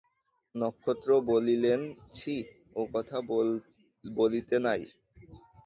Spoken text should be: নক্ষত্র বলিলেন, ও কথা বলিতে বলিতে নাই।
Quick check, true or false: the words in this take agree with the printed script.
false